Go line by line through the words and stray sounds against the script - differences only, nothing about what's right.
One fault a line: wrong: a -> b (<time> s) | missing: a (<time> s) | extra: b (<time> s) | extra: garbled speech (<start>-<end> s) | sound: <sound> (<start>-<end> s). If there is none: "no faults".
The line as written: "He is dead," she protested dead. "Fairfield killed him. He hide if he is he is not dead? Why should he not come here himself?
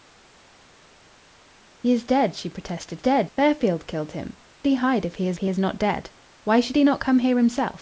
no faults